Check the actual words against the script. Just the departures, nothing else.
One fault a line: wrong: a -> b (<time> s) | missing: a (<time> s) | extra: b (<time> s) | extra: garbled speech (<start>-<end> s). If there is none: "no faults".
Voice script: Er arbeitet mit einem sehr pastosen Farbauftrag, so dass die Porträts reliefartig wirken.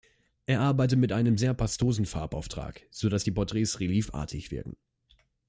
no faults